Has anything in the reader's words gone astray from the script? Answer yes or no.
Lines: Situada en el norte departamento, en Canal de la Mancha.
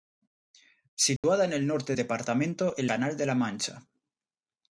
no